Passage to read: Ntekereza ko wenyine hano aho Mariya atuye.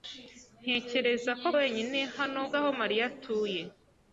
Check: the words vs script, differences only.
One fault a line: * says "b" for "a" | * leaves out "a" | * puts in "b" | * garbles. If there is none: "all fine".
all fine